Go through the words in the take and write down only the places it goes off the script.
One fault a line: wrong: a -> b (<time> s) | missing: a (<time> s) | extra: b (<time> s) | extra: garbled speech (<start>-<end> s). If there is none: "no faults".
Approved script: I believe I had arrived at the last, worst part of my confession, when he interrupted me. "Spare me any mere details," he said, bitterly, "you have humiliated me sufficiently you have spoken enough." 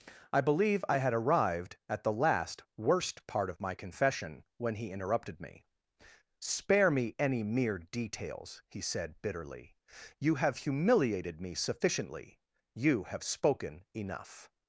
no faults